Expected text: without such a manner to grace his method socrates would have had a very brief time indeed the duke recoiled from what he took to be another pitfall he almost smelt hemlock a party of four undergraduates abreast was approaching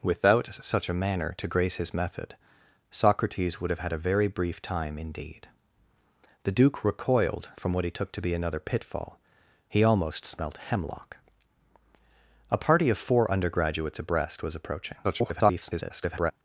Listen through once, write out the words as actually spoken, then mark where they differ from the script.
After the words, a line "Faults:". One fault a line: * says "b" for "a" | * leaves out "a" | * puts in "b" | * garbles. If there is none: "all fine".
without such a manner to grace his method socrates would have had a very brief time indeed the duke recoiled from what he took to be another pitfall he almost smelt hemlock a party of four undergraduates abreast was approaching [garbled]
Faults:
* garbles